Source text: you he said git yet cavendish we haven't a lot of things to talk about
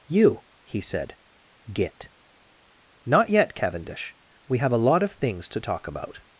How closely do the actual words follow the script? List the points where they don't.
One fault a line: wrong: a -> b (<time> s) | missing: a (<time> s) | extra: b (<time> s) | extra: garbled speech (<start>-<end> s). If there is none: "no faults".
extra: not (3.0 s)
wrong: haven't -> have (4.6 s)